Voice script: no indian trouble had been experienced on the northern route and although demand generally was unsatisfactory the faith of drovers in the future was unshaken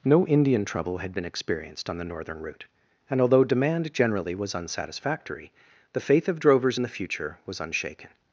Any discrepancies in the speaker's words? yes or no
no